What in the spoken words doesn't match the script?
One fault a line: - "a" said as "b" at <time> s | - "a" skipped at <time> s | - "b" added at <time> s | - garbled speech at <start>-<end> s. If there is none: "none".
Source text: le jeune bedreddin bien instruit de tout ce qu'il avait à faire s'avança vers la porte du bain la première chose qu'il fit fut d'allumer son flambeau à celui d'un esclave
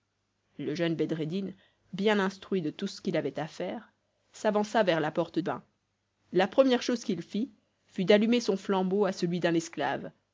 - "du" skipped at 5.4 s